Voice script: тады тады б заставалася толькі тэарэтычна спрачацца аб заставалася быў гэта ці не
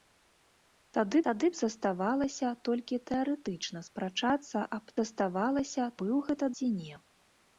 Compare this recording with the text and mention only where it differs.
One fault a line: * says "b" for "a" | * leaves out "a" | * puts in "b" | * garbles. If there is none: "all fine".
all fine